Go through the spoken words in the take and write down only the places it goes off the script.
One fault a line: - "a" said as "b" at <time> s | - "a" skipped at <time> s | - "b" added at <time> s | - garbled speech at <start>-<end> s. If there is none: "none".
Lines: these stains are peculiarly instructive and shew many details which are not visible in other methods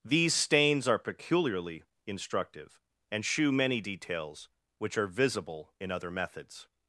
- "not" skipped at 5.1 s